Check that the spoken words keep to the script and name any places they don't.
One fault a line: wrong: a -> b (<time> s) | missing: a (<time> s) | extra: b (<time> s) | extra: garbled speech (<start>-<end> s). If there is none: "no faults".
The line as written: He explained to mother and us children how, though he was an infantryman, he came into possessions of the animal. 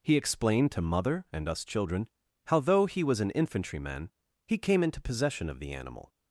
wrong: possessions -> possession (5.0 s)